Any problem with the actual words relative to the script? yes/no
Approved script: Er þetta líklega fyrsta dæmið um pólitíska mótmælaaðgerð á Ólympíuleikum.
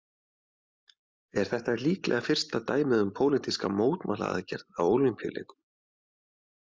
no